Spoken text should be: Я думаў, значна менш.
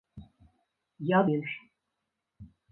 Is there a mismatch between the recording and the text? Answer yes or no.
yes